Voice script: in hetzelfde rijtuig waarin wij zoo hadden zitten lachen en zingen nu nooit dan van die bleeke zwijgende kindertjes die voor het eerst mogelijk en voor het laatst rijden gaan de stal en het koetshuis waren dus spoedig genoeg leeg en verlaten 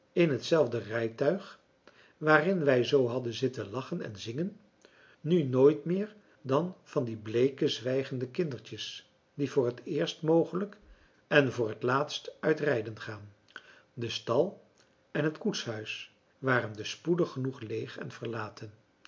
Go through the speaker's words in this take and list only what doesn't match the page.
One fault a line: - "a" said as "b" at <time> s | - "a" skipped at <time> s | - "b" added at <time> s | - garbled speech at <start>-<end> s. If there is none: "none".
- "meer" added at 5.8 s
- "uit" added at 12.4 s